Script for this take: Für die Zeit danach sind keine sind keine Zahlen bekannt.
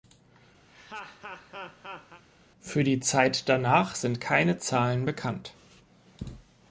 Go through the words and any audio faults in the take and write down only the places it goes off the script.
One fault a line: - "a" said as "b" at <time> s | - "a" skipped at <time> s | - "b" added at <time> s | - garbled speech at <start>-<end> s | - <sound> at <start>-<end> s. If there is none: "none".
- laugh at 0.7-2.2 s
- "sind keine" skipped at 4.6 s